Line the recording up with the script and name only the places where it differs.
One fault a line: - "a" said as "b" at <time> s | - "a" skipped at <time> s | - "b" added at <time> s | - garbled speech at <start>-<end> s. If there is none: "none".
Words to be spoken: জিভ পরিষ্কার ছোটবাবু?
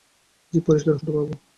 none